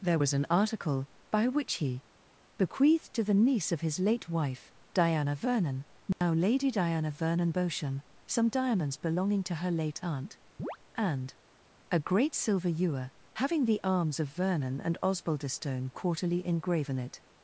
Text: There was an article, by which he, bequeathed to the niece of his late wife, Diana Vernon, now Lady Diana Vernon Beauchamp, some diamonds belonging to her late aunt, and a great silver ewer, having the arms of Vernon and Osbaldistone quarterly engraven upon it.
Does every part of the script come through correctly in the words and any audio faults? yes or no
no